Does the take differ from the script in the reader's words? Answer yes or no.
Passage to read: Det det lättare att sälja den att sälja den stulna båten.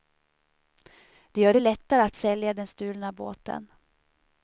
yes